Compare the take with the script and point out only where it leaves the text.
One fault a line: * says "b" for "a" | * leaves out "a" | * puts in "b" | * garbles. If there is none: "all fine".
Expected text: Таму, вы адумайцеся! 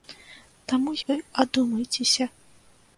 all fine